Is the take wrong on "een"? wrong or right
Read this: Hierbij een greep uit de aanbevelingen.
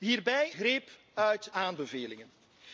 wrong